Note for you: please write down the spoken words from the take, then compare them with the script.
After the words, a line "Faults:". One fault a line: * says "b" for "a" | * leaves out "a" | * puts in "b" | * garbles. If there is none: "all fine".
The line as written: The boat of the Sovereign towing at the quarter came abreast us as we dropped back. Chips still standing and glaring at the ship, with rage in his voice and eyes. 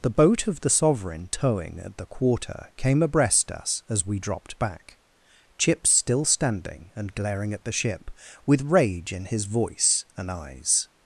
The boat of the Sovereign towing at the quarter came abreast us as we dropped back. Chips still standing and glaring at the ship, with rage in his voice and eyes.
Faults:
all fine